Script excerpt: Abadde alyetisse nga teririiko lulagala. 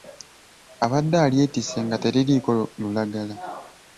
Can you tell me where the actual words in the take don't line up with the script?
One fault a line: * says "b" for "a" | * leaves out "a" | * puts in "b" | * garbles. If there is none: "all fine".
all fine